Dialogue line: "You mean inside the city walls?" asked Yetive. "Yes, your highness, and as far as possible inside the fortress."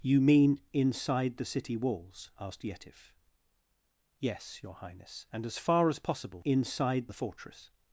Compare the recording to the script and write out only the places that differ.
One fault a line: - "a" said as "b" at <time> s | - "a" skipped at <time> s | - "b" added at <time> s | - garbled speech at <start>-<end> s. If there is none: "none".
none